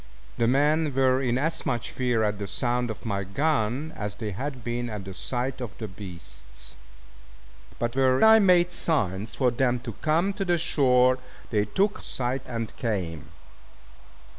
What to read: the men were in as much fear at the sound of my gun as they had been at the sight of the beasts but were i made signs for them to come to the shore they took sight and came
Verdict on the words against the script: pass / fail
pass